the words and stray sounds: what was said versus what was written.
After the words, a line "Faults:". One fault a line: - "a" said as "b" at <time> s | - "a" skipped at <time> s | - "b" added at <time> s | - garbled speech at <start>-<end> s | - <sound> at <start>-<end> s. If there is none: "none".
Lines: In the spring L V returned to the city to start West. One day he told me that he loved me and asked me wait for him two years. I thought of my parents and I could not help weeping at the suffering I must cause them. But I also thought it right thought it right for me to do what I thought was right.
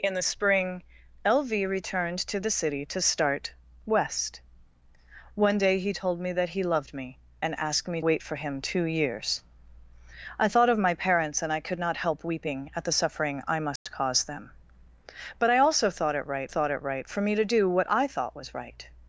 In the spring L V returned to the city to start West. One day he told me that he loved me and asked me wait for him two years. I thought of my parents and I could not help weeping at the suffering I must cause them. But I also thought it right thought it right for me to do what I thought was right.
Faults:
- dropout at 13.8-13.9 s